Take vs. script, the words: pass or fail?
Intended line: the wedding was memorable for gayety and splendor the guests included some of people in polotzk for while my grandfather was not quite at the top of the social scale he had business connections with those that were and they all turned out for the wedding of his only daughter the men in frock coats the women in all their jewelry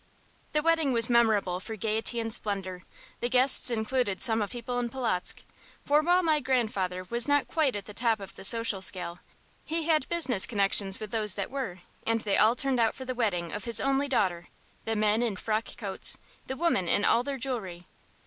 pass